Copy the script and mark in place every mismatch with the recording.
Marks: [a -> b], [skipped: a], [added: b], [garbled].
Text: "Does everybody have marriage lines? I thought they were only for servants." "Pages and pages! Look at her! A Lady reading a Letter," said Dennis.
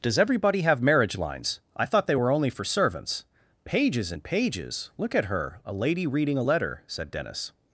"Does everybody have marriage lines? I thought they were only for servants." "Pages and pages! Look at her! A Lady reading a Letter," said Dennis.